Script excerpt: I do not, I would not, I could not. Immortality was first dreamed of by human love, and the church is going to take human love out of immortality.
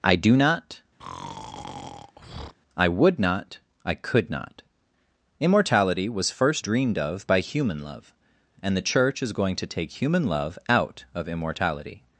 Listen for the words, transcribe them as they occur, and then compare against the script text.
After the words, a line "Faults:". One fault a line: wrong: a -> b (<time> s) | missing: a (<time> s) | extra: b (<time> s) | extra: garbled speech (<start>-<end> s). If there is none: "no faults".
I do not, I would not, I could not. Immortality was first dreamed of by human love, and the church is going to take human love out of immortality.
Faults:
no faults